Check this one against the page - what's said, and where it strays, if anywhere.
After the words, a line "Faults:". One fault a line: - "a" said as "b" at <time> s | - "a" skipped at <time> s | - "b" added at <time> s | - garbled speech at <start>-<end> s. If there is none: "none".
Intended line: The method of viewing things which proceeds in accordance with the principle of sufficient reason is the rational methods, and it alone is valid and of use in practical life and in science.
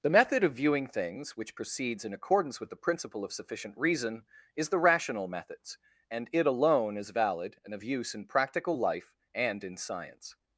The method of viewing things which proceeds in accordance with the principle of sufficient reason is the rational methods, and it alone is valid and of use in practical life and in science.
Faults:
none